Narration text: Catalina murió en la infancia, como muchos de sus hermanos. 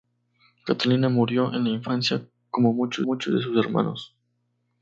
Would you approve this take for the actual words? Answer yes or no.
no